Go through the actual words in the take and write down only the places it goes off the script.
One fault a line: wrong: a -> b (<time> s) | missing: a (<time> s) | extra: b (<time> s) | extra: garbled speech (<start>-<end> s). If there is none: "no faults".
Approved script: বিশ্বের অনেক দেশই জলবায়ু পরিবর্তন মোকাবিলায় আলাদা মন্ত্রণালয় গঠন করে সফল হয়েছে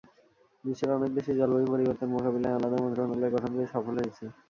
no faults